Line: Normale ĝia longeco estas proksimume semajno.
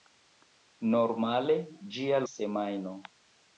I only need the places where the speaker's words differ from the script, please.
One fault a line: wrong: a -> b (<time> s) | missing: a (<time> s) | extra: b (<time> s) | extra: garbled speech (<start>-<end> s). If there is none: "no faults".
missing: longeco estas proksimume (2.2 s)